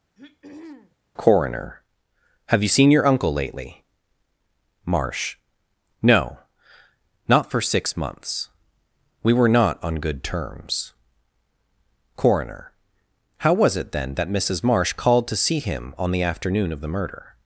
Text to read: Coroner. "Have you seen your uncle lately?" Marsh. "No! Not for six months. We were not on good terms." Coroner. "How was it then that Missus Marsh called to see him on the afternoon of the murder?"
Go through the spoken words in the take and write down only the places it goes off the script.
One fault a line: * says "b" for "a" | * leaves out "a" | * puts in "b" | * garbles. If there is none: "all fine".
all fine